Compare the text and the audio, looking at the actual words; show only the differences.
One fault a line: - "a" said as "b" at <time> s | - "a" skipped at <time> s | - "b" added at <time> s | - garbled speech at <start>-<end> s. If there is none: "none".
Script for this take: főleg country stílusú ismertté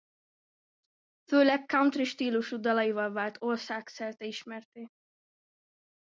- "dalaival vált országszerte" added at 2.6 s